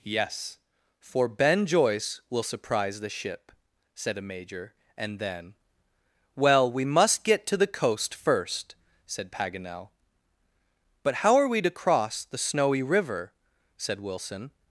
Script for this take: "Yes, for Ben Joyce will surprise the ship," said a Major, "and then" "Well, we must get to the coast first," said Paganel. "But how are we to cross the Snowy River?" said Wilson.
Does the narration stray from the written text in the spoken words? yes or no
no